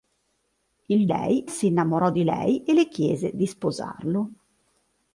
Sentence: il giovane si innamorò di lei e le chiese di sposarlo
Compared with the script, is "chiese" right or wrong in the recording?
right